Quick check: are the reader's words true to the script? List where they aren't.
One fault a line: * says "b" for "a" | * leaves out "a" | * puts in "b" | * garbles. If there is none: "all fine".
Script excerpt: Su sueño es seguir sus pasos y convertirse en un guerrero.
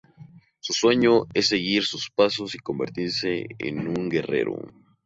all fine